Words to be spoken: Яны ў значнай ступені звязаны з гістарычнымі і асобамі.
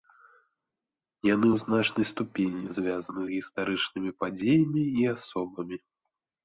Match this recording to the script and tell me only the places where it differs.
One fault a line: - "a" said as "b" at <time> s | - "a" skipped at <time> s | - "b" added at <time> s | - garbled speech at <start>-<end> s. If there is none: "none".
- "падзеямі" added at 4.2 s